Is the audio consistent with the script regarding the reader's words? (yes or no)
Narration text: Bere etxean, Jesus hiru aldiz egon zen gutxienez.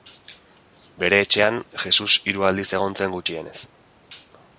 yes